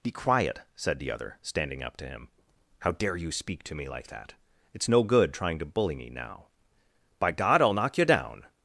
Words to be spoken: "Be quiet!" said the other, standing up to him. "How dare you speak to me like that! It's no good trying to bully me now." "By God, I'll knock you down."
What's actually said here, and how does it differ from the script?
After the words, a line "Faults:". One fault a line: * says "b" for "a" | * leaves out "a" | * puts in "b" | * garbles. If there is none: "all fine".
"Be quiet!" said the other, standing up to him. "How dare you speak to me like that! It's no good trying to bully me now." "By God, I'll knock you down."
Faults:
all fine